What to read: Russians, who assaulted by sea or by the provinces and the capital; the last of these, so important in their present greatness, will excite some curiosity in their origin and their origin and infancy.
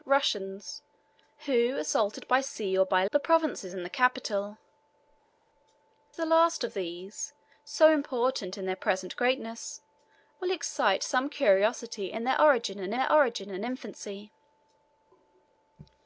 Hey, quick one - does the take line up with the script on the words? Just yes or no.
yes